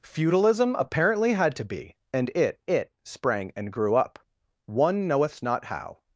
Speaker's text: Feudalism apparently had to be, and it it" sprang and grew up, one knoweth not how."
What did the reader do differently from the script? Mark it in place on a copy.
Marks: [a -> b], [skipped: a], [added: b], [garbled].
Feudalism apparently had to be, and it it" sprang and grew up, one knoweth not how."